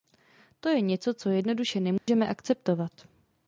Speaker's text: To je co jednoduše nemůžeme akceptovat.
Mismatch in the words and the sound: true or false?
true